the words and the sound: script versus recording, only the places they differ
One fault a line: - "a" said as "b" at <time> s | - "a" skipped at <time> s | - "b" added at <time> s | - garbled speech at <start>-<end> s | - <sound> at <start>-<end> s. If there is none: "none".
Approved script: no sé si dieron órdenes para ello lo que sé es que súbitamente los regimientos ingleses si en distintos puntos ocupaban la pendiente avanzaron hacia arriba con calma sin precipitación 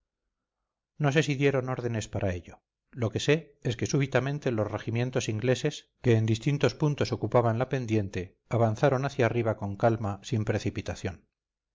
- "si" said as "que" at 6.0 s